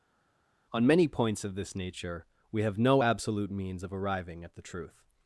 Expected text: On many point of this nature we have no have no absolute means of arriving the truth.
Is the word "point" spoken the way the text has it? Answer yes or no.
no